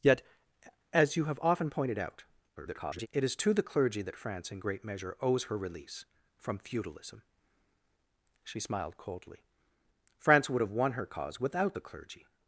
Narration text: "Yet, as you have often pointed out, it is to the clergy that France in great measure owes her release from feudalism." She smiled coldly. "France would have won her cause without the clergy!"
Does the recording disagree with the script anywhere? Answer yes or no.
yes